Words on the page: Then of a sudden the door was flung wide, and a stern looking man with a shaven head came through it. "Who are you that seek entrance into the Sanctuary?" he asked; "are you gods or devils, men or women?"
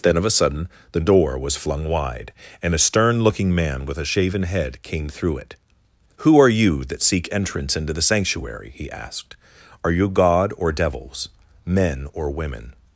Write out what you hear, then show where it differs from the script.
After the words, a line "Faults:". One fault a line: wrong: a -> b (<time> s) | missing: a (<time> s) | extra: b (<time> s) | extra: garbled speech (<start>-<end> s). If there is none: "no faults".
Then of a sudden the door was flung wide, and a stern looking man with a shaven head came through it. "Who are you that seek entrance into the Sanctuary?" he asked; "are you god or devils, men or women?"
Faults:
wrong: gods -> god (10.1 s)